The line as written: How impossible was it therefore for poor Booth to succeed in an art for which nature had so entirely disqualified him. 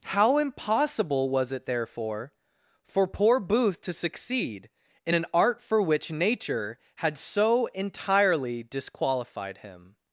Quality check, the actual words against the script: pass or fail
pass